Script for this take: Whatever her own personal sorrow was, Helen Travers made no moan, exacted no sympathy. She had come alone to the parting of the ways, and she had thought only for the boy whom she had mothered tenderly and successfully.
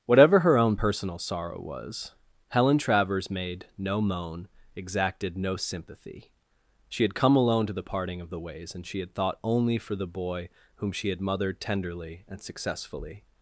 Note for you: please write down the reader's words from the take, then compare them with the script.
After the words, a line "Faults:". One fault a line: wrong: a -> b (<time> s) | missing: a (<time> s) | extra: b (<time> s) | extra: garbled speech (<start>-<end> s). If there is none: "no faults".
Whatever her own personal sorrow was, Helen Travers made no moan, exacted no sympathy. She had come alone to the parting of the ways, and she had thought only for the boy whom she had mothered tenderly and successfully.
Faults:
no faults